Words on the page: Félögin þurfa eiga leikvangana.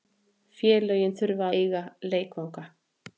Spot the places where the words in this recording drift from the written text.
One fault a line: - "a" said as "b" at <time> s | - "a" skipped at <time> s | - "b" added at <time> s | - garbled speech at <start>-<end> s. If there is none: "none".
none